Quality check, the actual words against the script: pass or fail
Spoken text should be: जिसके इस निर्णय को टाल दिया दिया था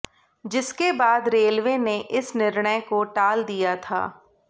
fail